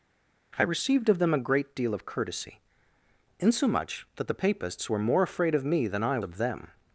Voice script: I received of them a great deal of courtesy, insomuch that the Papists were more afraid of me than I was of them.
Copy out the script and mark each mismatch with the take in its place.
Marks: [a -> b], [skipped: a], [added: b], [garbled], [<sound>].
I received of them a great deal of courtesy, insomuch that the Papists were more afraid of me than I [skipped: was] of them.